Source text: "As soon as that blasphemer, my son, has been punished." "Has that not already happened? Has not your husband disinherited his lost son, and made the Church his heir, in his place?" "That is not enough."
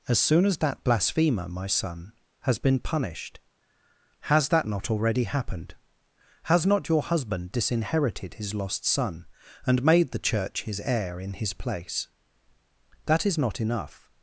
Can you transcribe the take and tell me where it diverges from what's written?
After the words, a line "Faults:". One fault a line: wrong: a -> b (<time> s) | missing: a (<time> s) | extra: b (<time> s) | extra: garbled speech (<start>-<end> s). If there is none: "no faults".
"As soon as that blasphemer, my son, has been punished." "Has that not already happened? Has not your husband disinherited his lost son, and made the Church his heir, in his place?" "That is not enough."
Faults:
no faults